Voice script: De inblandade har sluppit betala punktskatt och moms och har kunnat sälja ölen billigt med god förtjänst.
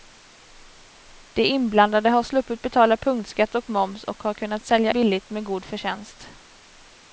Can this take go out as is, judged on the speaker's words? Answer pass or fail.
fail